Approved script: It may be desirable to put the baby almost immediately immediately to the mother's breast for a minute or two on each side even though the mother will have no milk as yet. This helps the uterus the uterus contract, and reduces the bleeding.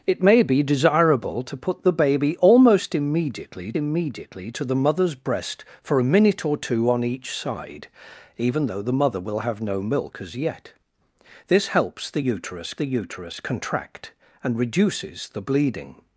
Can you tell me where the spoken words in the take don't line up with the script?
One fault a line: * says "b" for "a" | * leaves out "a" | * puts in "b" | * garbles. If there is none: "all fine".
all fine